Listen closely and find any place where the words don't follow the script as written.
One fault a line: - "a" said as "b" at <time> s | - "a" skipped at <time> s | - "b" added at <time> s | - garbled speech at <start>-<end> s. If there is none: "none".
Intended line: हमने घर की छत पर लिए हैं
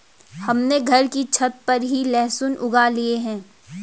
- "ही लहसुन उगा" added at 1.8 s